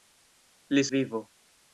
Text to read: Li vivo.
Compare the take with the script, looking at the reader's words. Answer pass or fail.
pass